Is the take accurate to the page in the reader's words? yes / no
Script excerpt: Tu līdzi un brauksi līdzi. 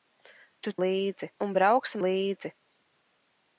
yes